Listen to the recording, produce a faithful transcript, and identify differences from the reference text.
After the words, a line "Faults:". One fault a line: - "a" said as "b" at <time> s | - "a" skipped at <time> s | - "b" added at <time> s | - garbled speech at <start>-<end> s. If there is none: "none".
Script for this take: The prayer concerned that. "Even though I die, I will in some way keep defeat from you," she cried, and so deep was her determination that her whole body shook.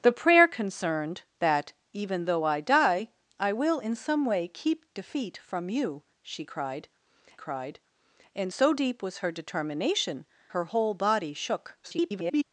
The prayer concerned that. "Even though I die, I will in some way keep defeat from you," she cried cried, and so deep was her determination her whole body shook. [garbled]
Faults:
- "cried" added at 7.4 s
- "that" skipped at 10.2 s
- garbled speech at 11.8-12.4 s